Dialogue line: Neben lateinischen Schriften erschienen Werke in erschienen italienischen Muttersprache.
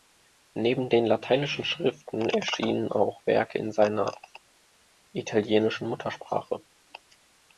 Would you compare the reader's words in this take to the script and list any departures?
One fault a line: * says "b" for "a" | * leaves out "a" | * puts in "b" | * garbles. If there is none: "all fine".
* puts in "den"
* puts in "auch"
* says "seiner" for "erschienen"